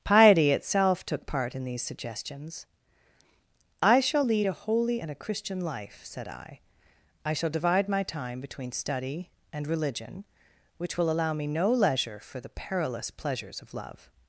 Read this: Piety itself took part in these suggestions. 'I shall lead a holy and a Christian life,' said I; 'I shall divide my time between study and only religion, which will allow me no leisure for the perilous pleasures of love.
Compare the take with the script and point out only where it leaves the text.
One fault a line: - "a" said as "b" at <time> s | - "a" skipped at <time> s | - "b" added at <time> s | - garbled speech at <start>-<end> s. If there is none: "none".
- "only" skipped at 9.7 s